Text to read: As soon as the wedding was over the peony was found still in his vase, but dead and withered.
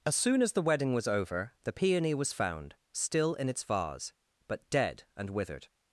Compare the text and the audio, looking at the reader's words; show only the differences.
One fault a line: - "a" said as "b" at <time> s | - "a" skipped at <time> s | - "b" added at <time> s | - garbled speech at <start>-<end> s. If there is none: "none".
- "his" said as "its" at 3.5 s